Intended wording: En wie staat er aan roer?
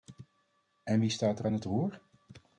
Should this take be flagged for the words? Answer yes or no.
yes